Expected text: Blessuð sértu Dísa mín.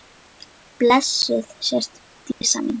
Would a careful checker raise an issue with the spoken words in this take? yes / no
no